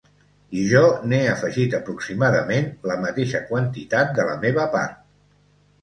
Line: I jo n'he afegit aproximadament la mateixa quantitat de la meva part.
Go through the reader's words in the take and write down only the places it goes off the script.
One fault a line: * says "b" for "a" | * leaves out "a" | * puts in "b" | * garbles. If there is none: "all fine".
all fine